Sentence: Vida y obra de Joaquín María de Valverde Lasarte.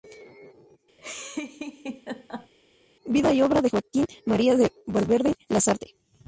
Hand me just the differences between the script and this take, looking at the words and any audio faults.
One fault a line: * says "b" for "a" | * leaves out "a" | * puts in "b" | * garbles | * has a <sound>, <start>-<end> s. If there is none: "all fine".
* has a laugh, 1.0-2.5 s